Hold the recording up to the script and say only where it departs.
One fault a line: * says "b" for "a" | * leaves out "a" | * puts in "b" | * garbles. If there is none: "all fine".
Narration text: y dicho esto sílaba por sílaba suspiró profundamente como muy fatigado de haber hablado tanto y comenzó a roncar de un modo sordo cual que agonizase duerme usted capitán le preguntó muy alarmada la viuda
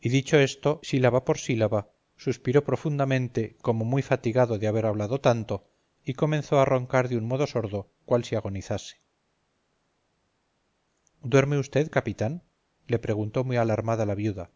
* says "si" for "que"